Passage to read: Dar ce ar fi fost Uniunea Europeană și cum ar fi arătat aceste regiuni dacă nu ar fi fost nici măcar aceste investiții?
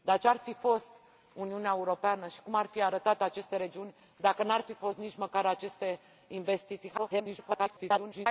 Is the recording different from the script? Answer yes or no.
yes